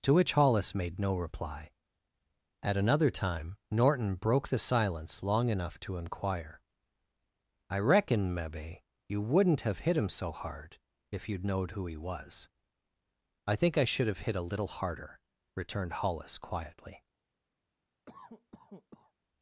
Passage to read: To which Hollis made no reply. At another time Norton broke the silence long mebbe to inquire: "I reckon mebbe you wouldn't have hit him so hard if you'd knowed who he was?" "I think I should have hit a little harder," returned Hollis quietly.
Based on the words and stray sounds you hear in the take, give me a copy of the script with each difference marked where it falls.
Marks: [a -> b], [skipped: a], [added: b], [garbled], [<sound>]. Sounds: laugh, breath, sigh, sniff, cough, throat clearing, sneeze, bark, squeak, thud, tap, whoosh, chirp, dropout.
To which Hollis made no reply. At another time Norton broke the silence long [mebbe -> enough] to inquire: "I reckon mebbe you wouldn't have hit him so hard if you'd knowed who he was?" "I think I should have hit a little harder," returned Hollis quietly. [cough]